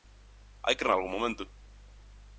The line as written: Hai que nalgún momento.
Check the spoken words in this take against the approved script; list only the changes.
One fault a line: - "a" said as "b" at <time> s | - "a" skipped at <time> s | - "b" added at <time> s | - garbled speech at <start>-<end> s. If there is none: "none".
none